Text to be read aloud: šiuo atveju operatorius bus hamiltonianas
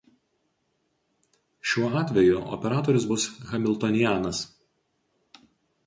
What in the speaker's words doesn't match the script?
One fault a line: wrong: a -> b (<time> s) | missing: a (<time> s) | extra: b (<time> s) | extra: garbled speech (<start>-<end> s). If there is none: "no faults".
no faults